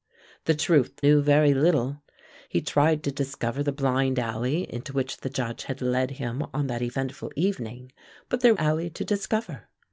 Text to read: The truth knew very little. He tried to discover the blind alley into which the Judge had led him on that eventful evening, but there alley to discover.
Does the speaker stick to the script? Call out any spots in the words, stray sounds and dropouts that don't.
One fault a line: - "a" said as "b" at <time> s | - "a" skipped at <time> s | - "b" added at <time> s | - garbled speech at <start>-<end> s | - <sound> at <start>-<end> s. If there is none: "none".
none